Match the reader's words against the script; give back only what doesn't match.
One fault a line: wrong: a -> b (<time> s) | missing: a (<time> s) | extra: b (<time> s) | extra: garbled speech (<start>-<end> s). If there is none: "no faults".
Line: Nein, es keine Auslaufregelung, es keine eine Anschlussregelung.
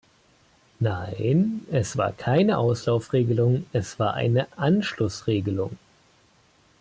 extra: war (1.9 s)
wrong: keine -> war (4.0 s)